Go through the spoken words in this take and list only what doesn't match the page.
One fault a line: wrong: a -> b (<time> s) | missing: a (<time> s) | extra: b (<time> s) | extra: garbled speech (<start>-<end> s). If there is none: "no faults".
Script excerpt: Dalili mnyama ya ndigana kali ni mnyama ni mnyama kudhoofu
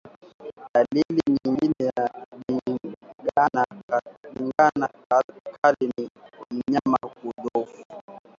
wrong: mnyama -> nyingine (1.3 s)
missing: ni mnyama (7.0 s)